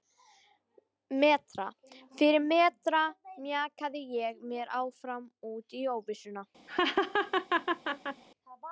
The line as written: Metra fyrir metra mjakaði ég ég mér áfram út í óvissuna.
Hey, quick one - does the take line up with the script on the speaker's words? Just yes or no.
no